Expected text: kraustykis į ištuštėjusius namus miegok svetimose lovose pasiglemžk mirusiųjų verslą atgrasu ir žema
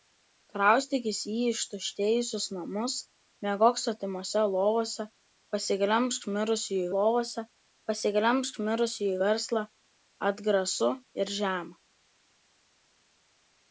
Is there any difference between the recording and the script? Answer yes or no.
yes